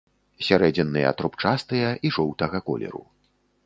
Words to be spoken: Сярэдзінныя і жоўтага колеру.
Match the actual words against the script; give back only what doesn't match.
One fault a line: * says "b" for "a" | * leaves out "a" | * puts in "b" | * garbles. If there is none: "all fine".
* puts in "трубчастыя"